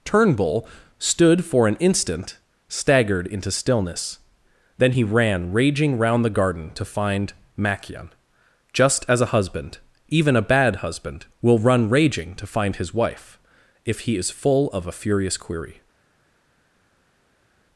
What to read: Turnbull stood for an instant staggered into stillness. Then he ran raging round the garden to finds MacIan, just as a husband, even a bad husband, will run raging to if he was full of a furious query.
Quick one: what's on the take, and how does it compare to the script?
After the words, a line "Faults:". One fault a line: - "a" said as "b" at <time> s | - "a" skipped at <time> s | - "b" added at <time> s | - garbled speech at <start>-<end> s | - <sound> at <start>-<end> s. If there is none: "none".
Turnbull stood for an instant staggered into stillness. Then he ran raging round the garden to find MacIan, just as a husband, even a bad husband, will run raging to find his wife if he is full of a furious query.
Faults:
- "finds" said as "find" at 6.8 s
- "find his wife" added at 12.5 s
- "was" said as "is" at 14.2 s